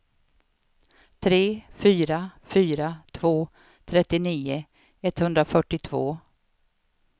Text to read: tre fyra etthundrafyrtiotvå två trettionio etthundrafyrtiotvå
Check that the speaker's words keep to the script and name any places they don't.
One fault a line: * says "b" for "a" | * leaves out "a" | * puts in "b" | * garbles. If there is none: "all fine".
* says "fyra" for "etthundrafyrtiotvå"